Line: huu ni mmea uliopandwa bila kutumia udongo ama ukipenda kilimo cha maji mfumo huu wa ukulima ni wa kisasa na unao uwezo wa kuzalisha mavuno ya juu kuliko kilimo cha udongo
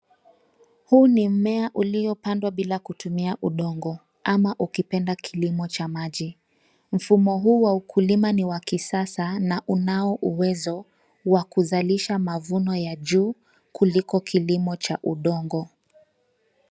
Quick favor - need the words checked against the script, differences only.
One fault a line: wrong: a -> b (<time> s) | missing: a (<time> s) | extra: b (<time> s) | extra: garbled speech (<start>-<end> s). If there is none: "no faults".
no faults